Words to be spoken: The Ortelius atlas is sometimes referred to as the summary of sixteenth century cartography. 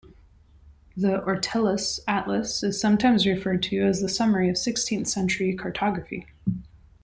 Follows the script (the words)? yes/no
yes